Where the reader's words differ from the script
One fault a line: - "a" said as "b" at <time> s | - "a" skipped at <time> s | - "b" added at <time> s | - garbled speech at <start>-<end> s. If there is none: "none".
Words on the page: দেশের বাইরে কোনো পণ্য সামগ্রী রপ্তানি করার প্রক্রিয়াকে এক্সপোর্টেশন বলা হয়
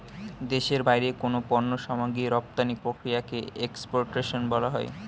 - "করার" skipped at 2.7 s